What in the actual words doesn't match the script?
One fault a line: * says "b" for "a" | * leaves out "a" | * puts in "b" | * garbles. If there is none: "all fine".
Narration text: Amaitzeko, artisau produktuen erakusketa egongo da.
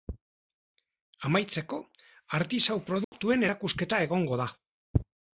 all fine